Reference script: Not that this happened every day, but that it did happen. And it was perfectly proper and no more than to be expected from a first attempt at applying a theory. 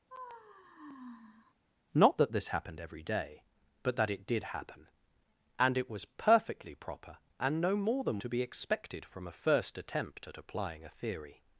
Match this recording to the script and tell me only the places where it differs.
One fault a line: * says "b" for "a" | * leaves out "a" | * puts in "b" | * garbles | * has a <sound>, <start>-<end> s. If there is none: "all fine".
* has a sigh, 0.1-1.5 s